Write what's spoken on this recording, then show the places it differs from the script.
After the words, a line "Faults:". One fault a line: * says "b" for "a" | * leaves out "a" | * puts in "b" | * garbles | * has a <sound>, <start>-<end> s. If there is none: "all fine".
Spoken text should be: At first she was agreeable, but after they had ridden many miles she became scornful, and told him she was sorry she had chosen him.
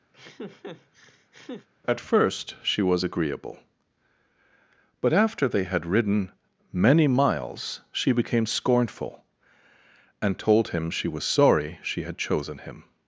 At first she was agreeable, but after they had ridden many miles she became scornful, and told him she was sorry she had chosen him.
Faults:
* has a laugh, 0.1-1.7 s